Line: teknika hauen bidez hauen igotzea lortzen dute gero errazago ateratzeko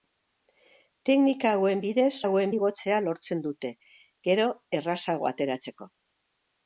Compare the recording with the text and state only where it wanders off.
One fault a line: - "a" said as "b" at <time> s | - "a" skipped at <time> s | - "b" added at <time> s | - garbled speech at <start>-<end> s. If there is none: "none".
none